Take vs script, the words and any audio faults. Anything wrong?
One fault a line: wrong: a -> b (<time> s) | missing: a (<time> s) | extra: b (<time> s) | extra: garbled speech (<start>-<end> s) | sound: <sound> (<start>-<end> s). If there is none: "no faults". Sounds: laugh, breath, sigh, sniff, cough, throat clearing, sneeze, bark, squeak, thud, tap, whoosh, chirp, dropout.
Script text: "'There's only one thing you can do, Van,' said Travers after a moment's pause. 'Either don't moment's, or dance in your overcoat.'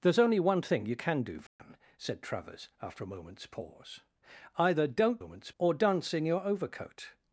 sound: dropout (1.5-1.6 s)